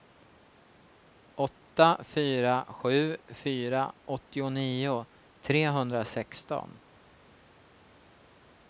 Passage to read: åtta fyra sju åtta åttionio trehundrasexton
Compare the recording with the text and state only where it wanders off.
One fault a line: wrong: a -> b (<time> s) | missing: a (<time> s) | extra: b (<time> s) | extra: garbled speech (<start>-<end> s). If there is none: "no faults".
wrong: åtta -> fyra (3.3 s)